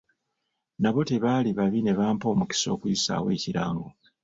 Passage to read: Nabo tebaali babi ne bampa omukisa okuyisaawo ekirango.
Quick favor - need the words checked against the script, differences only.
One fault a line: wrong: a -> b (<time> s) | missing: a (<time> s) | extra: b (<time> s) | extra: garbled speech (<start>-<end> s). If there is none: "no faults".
no faults